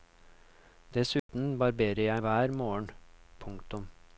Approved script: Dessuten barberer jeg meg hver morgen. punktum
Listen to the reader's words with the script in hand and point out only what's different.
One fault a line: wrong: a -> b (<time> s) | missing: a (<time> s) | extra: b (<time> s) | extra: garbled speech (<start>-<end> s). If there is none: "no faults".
missing: meg (2.2 s)